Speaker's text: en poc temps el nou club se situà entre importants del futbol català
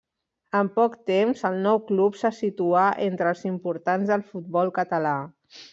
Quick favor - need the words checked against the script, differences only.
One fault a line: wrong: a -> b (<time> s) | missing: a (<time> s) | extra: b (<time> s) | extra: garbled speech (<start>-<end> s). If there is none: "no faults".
extra: els (3.3 s)